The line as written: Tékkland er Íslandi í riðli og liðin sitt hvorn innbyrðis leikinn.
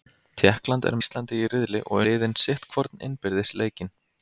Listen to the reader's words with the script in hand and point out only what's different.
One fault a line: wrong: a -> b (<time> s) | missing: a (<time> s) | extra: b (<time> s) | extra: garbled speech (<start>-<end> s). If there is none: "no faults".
no faults